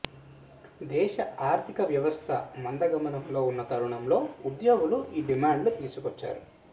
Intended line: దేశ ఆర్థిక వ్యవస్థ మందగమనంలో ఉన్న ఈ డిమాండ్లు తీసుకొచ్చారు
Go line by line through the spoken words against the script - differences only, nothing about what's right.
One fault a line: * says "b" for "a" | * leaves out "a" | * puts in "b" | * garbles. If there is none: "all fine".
* puts in "తరుణంలో ఉద్యోగులు"